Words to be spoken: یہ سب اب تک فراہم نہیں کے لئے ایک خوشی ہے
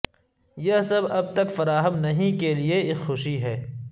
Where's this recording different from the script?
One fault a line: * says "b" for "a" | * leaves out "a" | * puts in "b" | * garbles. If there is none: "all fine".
all fine